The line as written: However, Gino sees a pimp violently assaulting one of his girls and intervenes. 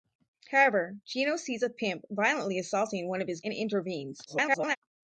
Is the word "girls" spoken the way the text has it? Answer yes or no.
no